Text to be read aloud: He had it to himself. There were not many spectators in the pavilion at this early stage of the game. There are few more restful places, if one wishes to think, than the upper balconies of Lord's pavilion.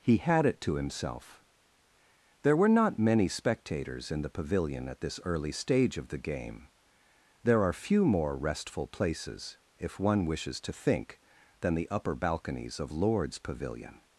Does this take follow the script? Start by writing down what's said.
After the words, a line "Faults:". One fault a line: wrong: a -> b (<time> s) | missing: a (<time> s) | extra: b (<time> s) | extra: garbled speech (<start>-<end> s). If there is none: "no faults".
He had it to himself. There were not many spectators in the pavilion at this early stage of the game. There are few more restful places, if one wishes to think, than the upper balconies of Lord's pavilion.
Faults:
no faults